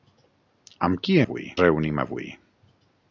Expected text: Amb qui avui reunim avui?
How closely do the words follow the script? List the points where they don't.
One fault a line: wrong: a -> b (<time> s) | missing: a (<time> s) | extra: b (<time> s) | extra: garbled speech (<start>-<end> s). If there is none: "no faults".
no faults